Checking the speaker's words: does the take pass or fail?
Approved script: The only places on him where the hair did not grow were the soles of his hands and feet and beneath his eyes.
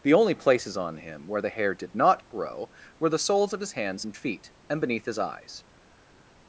pass